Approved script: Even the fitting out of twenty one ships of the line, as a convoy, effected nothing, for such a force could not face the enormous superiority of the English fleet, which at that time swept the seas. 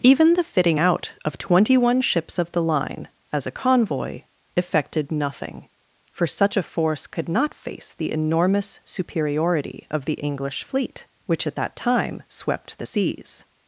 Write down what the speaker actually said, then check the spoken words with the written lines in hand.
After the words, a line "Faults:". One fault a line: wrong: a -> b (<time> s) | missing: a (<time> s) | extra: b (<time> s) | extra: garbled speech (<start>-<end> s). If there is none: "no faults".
Even the fitting out of twenty one ships of the line, as a convoy, effected nothing, for such a force could not face the enormous superiority of the English fleet, which at that time swept the seas.
Faults:
no faults